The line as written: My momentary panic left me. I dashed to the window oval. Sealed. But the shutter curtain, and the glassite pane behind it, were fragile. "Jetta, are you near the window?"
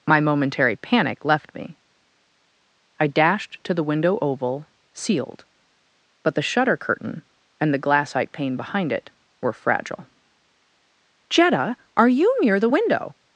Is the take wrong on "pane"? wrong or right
right